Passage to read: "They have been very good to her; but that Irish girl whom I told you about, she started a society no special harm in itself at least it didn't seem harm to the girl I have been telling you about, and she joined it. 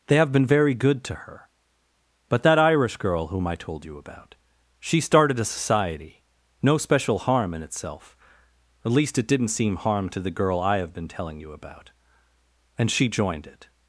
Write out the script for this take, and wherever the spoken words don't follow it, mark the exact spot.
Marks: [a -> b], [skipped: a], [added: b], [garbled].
"They have been very good to her; but that Irish girl whom I told you about, she started a society no special harm in itself at least it didn't seem harm to the girl I have been telling you about, and she joined it.